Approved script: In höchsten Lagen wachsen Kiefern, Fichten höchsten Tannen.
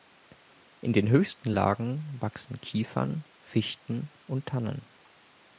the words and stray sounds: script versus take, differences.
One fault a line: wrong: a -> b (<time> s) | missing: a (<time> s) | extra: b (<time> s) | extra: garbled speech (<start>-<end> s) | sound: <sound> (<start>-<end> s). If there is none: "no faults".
extra: den (0.9 s)
wrong: höchsten -> und (4.3 s)